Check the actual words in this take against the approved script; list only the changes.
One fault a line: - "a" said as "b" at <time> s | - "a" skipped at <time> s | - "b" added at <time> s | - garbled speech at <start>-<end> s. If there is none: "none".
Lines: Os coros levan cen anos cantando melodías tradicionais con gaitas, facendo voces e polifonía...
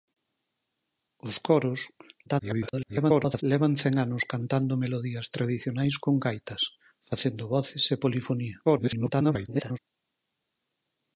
- garbled speech at 2.3-3.4 s
- garbled speech at 8.6-9.8 s